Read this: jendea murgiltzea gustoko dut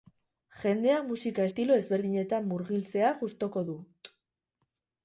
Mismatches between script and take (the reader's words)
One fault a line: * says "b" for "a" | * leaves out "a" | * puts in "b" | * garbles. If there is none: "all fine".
* puts in "musika estilo ezberdinetan"